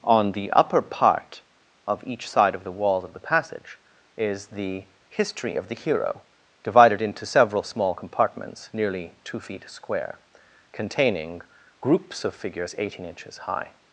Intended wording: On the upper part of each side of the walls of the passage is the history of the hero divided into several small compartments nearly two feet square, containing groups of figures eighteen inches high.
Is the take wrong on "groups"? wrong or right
right